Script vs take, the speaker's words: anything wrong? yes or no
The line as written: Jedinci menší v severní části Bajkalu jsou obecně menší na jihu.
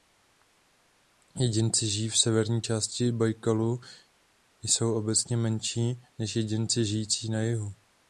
yes